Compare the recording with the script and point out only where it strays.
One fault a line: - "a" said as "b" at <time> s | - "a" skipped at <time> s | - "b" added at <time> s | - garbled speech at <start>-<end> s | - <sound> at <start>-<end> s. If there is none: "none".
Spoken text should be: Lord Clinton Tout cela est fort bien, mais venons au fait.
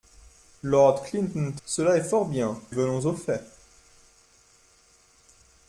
- "Tout" skipped at 1.5 s
- "mais" skipped at 2.6 s